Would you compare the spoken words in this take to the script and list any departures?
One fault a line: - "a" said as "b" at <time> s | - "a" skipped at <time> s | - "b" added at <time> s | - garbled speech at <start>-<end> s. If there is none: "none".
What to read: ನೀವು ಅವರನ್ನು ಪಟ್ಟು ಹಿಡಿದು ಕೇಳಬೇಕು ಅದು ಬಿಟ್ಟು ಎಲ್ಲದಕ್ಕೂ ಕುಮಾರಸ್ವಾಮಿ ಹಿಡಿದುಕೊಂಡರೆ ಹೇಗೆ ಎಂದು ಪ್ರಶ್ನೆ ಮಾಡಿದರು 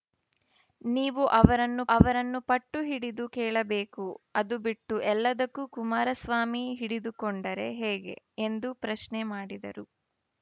- "ಅವರನ್ನು" added at 1.9 s